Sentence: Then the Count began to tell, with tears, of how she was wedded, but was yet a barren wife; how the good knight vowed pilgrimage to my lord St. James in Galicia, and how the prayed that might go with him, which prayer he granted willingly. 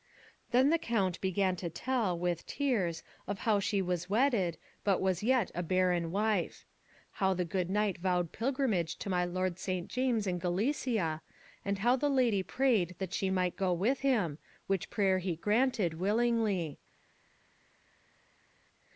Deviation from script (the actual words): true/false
true